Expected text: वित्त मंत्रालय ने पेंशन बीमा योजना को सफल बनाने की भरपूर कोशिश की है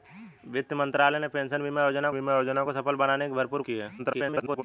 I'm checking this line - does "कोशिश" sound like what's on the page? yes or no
no